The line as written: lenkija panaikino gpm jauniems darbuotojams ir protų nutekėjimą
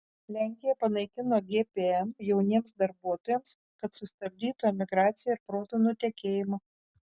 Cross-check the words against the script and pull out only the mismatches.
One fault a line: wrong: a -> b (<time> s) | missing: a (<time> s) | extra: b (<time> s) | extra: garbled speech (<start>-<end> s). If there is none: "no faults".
extra: kad sustabdytų emigraciją (3.8 s)